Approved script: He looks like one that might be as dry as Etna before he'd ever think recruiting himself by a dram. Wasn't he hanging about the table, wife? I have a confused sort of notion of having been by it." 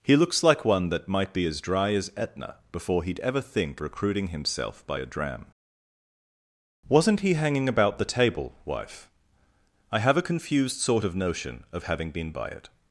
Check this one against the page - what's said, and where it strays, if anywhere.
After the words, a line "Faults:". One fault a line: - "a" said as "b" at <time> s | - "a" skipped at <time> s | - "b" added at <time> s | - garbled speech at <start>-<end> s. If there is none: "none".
He looks like one that might be as dry as Etna before he'd ever think recruiting himself by a dram. Wasn't he hanging about the table, wife? I have a confused sort of notion of having been by it."
Faults:
none